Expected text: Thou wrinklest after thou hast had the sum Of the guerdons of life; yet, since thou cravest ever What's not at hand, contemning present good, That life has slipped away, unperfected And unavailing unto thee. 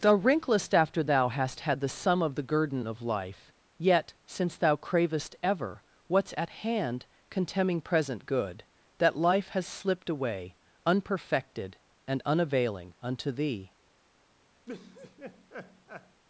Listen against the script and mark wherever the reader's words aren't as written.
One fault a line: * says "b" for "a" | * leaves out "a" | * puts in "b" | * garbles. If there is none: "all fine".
* says "guerdon" for "guerdons"
* leaves out "not"